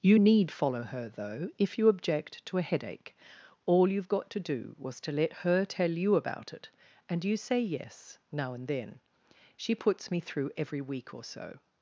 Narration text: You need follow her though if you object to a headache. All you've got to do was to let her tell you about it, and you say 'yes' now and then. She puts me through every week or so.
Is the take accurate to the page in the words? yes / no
yes